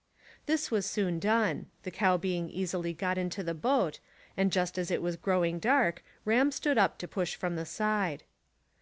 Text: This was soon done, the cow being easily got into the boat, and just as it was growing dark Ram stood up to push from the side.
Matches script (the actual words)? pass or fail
pass